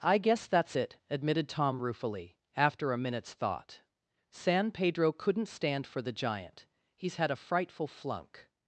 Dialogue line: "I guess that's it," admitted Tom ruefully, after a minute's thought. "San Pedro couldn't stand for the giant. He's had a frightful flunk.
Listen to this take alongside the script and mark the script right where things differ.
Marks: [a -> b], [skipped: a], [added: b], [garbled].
"I guess that's it," admitted Tom ruefully, after a minute's thought. "San Pedro couldn't stand for the giant. He's had a frightful flunk.